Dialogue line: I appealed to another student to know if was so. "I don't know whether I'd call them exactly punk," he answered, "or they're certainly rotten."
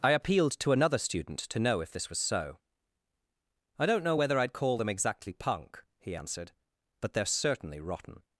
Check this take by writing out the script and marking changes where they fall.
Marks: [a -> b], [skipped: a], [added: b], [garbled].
I appealed to another student to know if [added: this] was so. "I don't know whether I'd call them exactly punk," he answered, ["or -> but] they're certainly rotten."